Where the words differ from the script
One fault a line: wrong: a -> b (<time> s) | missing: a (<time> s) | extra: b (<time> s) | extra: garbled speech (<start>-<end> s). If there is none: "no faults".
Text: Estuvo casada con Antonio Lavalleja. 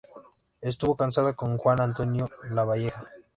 extra: Juan (1.6 s)